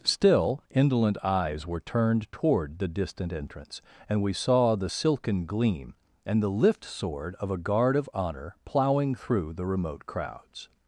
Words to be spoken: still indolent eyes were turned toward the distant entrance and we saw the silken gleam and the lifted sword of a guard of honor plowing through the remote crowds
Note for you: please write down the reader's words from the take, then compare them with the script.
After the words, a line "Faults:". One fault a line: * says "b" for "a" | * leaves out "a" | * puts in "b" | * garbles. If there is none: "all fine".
still indolent eyes were turned toward the distant entrance and we saw the silken gleam and the lift sword of a guard of honor plowing through the remote crowds
Faults:
* says "lift" for "lifted"